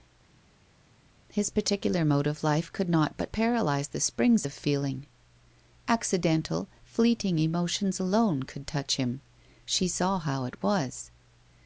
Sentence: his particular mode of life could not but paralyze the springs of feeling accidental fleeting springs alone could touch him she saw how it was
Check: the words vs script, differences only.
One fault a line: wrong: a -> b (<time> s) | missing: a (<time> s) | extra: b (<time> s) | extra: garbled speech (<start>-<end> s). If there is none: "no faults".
wrong: springs -> emotions (7.4 s)